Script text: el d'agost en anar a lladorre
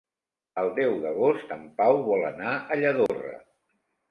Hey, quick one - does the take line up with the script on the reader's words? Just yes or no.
no